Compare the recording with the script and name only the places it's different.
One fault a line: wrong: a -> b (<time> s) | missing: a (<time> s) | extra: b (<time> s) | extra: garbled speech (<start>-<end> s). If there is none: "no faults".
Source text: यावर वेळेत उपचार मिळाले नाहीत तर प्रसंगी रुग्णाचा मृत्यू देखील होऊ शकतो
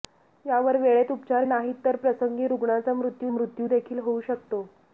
missing: मिळाले (1.4 s)
extra: मृत्यू (3.3 s)